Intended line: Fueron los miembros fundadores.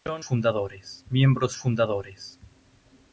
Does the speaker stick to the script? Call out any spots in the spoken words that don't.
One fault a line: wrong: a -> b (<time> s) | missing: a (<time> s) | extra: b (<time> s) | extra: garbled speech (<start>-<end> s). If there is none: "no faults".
wrong: los -> fundadores (0.2 s)